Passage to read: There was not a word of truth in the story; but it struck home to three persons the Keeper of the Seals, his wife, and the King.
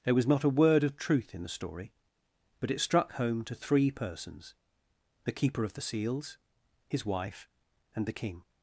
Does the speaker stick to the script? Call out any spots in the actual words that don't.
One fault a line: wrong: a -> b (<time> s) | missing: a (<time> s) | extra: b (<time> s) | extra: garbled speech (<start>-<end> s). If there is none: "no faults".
no faults